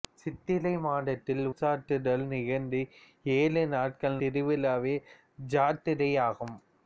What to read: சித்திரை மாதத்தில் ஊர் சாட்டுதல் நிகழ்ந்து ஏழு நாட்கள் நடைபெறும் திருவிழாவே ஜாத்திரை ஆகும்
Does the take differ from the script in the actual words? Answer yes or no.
yes